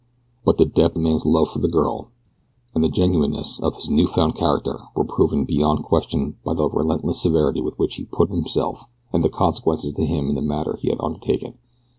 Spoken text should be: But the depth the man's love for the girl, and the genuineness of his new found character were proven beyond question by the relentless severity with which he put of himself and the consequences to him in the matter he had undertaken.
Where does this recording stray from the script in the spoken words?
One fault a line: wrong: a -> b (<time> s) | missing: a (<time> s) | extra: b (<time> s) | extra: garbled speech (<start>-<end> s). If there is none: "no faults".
no faults